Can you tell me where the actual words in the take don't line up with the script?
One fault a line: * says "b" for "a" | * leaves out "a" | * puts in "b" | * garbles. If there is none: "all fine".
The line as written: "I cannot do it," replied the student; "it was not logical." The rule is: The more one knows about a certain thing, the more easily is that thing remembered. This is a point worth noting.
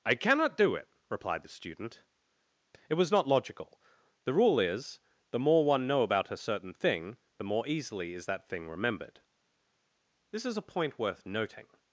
* says "know" for "knows"